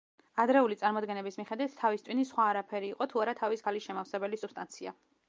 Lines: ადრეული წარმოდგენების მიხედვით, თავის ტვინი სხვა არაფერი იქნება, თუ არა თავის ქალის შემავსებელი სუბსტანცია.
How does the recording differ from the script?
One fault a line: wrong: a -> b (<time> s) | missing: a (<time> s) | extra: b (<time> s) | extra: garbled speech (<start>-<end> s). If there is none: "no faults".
wrong: იქნება -> იყო (2.9 s)